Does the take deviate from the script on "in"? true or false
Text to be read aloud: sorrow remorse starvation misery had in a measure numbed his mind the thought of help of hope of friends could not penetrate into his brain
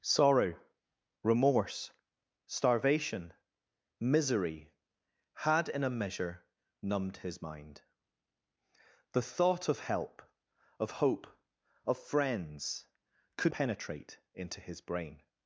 false